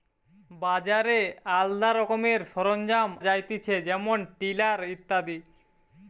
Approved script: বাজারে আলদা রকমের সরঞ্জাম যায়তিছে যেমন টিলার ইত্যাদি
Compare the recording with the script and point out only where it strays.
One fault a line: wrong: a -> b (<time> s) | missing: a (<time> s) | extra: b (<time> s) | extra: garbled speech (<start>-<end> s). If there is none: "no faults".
no faults